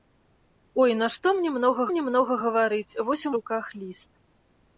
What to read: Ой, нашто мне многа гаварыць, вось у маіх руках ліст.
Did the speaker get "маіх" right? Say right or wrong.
wrong